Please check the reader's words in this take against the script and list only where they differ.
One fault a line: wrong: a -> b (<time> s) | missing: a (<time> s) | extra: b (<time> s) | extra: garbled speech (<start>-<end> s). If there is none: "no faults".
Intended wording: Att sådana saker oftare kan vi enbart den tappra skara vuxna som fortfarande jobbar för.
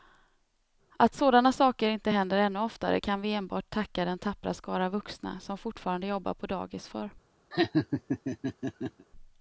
extra: inte händer ännu (1.9 s)
extra: tacka (3.7 s)
extra: på dagis (6.3 s)